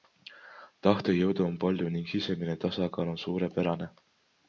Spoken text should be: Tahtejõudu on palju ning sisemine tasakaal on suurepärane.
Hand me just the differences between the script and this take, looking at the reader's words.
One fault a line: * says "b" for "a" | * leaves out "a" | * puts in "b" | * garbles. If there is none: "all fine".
all fine